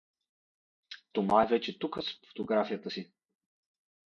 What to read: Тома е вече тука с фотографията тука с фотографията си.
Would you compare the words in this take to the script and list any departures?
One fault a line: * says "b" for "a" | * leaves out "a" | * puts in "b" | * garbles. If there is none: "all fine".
* leaves out "тука с фотографията"